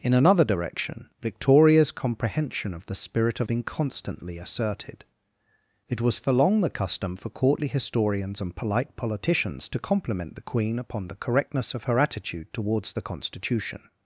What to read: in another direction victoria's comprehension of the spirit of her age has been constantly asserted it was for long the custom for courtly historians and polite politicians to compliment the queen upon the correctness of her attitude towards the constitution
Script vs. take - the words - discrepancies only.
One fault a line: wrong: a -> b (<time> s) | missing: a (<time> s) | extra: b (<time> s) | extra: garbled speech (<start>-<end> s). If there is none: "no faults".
missing: her age has (3.5 s)